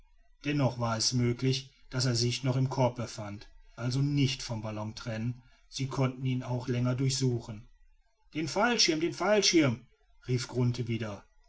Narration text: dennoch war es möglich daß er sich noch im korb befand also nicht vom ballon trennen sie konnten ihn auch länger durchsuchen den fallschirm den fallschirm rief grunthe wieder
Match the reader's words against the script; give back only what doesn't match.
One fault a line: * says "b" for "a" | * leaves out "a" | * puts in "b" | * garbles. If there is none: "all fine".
all fine